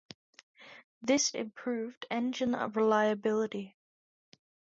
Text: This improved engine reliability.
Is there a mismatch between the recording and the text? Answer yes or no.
no